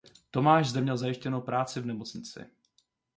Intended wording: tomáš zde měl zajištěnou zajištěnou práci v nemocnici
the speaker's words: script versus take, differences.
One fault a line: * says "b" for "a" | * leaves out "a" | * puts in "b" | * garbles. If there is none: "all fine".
* leaves out "zajištěnou"